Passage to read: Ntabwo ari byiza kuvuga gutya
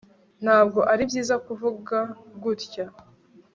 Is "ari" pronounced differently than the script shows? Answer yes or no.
no